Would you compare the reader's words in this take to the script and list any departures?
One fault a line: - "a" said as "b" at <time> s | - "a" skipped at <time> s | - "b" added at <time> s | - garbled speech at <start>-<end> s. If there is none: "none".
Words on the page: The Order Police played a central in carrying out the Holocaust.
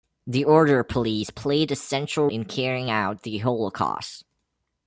none